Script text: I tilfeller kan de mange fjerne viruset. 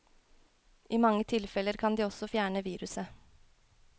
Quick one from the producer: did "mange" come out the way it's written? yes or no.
no